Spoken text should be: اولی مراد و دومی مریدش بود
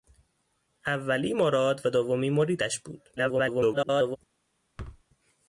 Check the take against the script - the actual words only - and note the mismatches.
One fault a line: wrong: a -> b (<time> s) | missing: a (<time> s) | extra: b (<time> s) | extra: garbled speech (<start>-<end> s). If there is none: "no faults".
extra: garbled speech (3.2-4.2 s)